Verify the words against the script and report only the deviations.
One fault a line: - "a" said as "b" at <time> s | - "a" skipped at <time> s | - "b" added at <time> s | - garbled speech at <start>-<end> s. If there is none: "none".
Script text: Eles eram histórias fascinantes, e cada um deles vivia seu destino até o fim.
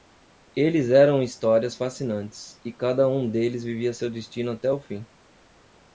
none